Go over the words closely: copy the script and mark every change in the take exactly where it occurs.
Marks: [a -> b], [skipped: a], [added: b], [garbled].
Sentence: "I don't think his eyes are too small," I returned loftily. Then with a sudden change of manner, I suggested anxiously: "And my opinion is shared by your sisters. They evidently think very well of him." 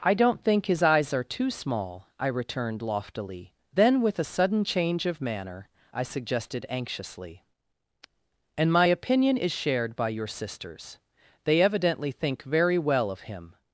"I don't think his eyes are too small," I returned loftily. Then with a sudden change of manner, I suggested anxiously: "And my opinion is shared by your sisters. They evidently think very well of him."